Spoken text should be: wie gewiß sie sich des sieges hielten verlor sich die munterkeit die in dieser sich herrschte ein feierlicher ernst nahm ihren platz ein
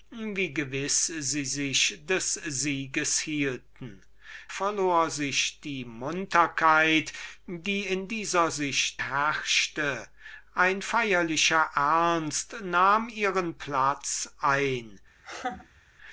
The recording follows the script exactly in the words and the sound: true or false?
false